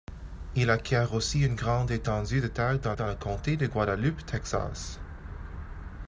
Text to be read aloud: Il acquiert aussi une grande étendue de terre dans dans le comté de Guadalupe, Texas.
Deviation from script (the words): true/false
false